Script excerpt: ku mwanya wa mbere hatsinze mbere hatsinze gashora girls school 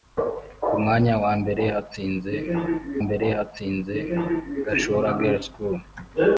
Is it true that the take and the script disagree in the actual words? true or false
false